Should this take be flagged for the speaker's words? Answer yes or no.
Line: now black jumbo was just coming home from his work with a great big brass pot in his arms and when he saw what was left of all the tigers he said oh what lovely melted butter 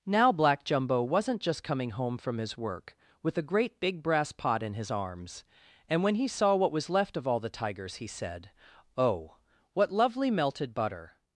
yes